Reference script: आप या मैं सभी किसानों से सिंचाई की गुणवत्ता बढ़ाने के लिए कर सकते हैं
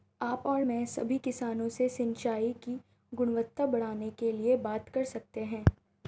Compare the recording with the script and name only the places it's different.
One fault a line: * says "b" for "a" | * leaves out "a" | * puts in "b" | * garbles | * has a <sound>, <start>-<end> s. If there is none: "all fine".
* says "और" for "या"
* puts in "बात"